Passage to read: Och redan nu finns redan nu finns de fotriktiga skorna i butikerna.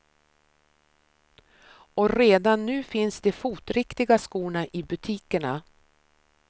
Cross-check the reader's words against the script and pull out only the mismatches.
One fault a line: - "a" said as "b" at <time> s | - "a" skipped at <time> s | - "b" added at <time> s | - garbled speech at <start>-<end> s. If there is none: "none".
- "redan nu finns" skipped at 3.2 s